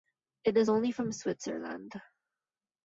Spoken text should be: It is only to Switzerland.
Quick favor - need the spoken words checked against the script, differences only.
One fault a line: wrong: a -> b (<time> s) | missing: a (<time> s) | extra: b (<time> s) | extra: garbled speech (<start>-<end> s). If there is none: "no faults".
wrong: to -> from (0.9 s)